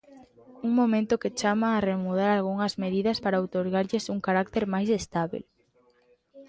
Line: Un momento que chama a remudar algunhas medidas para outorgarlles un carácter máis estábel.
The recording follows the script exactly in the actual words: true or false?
true